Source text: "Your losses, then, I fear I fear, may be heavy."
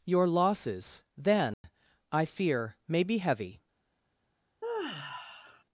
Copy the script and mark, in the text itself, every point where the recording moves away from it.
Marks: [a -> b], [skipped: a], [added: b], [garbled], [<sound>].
"Your losses, then, [dropout] I fear [skipped: I fear,] may be heavy." [sigh]